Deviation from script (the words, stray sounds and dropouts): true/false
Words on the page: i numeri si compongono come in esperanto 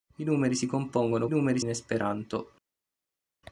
true